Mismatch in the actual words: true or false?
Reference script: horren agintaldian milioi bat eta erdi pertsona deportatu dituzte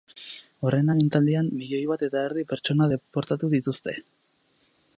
false